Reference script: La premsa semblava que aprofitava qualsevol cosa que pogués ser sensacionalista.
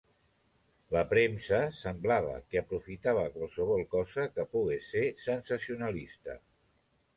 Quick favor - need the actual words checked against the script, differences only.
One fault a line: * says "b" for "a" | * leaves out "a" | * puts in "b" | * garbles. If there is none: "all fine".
all fine